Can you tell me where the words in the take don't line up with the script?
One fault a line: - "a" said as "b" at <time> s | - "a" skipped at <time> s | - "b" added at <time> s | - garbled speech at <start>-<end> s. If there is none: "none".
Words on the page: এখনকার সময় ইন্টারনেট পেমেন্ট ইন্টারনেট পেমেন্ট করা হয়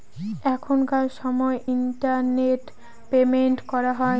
- "ইন্টারনেট পেমেন্ট" skipped at 3.6 s